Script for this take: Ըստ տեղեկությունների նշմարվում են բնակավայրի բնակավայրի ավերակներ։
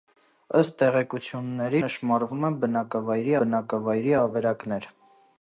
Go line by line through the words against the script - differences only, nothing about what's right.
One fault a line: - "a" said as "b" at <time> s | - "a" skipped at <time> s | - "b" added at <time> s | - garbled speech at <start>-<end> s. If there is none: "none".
none